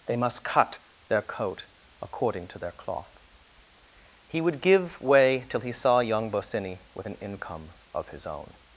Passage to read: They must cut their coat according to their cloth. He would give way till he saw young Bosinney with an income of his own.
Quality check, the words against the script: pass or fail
pass